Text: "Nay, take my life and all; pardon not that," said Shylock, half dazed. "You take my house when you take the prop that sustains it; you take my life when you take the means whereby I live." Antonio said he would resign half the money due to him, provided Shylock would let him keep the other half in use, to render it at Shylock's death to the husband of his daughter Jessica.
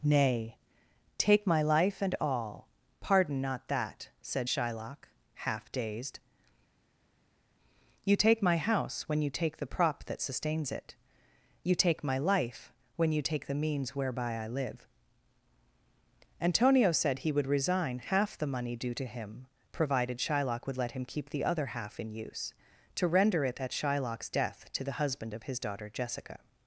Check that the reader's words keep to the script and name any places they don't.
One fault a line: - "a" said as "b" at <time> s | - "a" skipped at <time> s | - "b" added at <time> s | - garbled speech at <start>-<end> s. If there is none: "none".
none